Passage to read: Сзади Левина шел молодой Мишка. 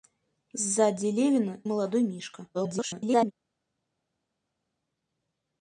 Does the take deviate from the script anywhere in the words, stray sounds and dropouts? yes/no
yes